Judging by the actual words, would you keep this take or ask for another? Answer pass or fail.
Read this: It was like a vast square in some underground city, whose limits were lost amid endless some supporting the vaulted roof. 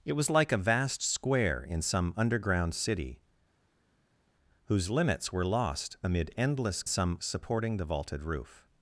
pass